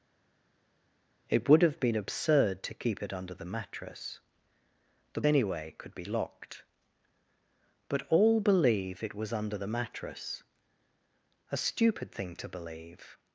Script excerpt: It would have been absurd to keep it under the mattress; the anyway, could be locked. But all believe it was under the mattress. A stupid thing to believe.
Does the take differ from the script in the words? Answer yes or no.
no